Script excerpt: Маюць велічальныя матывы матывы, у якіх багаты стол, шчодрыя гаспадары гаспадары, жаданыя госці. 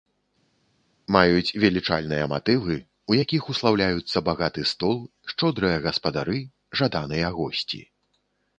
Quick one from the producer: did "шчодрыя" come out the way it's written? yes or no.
yes